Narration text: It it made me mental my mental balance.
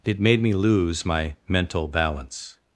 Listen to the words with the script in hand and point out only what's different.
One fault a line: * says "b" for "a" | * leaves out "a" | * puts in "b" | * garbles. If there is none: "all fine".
* leaves out "it"
* says "lose" for "mental"